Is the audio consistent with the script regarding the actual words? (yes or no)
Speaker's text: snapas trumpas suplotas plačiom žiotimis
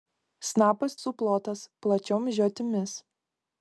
no